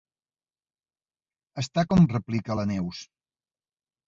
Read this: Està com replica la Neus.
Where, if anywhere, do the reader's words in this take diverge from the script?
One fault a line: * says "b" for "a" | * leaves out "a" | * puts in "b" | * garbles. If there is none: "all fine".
all fine